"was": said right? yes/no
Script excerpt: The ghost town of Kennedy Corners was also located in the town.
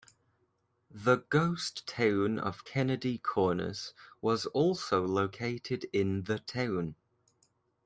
yes